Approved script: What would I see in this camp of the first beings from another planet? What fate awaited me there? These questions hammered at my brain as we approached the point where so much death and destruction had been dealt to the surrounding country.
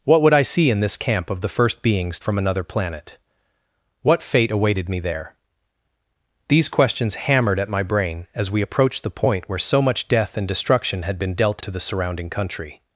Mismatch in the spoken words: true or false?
false